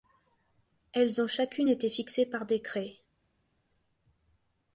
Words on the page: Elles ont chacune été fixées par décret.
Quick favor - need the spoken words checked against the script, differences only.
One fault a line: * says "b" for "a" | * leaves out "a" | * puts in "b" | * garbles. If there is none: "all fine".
all fine